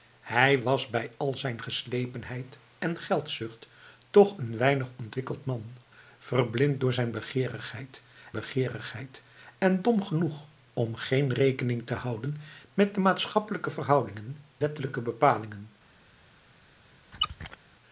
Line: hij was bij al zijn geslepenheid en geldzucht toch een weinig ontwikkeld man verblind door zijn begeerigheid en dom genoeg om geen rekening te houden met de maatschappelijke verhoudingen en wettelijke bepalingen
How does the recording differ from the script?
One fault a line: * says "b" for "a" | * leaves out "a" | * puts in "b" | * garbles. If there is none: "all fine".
* puts in "begeerigheid"
* leaves out "en"